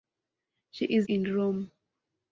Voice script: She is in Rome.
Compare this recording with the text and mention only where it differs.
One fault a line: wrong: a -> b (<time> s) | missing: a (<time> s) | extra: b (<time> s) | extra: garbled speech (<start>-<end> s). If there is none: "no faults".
no faults